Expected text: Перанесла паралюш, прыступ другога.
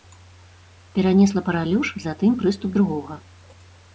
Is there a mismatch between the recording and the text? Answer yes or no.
yes